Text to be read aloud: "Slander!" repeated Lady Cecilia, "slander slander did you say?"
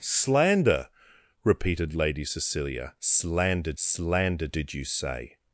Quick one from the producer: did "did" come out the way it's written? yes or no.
yes